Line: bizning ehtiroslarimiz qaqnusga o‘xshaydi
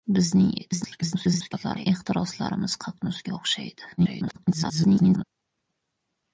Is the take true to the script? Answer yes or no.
no